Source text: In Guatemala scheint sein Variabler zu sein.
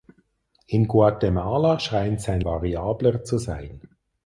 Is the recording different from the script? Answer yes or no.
no